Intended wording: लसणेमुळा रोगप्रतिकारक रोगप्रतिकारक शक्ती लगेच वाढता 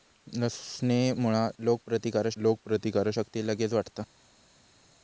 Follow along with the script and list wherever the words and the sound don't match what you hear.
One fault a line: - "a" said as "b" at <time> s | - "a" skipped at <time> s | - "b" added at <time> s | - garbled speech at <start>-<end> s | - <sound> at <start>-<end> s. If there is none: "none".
none